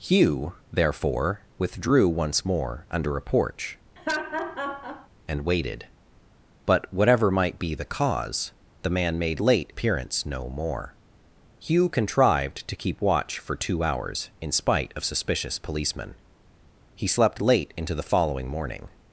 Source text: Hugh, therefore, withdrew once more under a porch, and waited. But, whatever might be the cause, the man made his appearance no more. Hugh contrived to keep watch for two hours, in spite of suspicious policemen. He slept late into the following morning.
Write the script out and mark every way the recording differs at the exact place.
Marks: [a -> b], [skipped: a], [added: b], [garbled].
Hugh, therefore, withdrew once more under a porch, and waited. But, whatever might be the cause, the man made [his -> late] appearance no more. Hugh contrived to keep watch for two hours, in spite of suspicious policemen. He slept late into the following morning.